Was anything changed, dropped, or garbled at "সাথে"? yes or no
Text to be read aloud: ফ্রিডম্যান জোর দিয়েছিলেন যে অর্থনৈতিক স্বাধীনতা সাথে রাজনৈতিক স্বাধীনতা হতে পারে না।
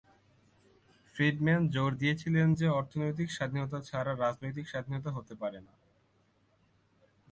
yes